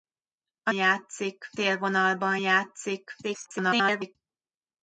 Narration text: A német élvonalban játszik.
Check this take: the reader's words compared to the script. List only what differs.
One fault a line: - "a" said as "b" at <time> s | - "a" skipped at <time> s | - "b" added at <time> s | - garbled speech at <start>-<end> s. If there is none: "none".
- "német" said as "játszik" at 0.7 s
- garbled speech at 3.2-4.2 s